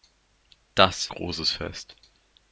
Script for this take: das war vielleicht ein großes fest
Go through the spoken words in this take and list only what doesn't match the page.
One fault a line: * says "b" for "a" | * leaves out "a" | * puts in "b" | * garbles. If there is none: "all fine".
* leaves out "war vielleicht ein"